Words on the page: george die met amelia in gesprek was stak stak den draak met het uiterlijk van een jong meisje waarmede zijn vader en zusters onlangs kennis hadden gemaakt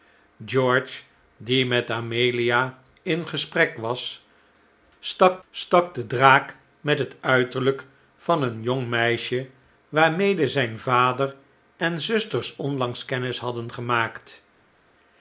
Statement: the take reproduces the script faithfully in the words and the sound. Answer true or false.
true